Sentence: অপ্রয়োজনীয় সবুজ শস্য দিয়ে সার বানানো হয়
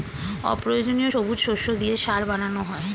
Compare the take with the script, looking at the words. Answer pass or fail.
pass